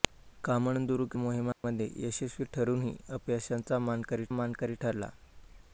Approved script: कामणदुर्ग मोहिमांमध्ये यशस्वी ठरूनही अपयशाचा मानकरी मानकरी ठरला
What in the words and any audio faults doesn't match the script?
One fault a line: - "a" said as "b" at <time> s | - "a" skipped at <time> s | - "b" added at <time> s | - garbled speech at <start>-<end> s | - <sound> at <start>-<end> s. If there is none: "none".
- dropout at 1.5-1.6 s